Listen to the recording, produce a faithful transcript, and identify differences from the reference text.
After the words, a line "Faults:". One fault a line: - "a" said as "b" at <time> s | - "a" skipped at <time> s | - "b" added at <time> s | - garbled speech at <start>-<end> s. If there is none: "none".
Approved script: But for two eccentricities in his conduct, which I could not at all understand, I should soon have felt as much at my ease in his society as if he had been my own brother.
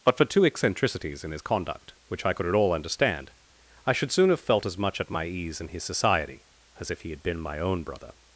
But for two eccentricities in his conduct, which I could at all understand, I should soon have felt as much at my ease in his society as if he had been my own brother.
Faults:
- "not" skipped at 2.5 s